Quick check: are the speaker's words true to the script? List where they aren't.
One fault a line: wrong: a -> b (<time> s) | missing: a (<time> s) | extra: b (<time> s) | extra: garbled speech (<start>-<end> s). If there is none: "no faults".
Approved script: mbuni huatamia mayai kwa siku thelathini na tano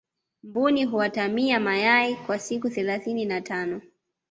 no faults